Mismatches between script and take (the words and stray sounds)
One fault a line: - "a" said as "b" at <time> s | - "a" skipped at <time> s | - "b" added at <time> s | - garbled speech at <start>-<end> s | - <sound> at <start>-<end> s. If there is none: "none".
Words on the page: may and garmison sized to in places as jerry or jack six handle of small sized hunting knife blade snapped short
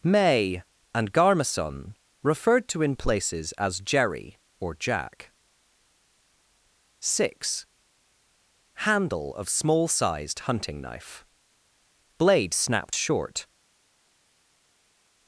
- "sized" said as "referred" at 2.2 s